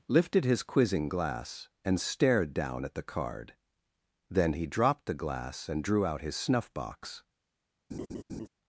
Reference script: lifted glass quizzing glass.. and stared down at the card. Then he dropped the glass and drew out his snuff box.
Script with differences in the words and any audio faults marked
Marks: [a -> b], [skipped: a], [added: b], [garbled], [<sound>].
lifted [glass -> his] quizzing glass.. and stared down at the card. Then he dropped the glass and drew out his snuff box. [laugh]